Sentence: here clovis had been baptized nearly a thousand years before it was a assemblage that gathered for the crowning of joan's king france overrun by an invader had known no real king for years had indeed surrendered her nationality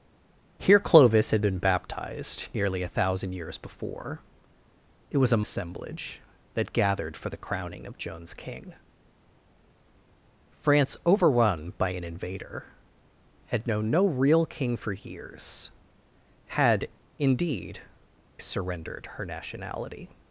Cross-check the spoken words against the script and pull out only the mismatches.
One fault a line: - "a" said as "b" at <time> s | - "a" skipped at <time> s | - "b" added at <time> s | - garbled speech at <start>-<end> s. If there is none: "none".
none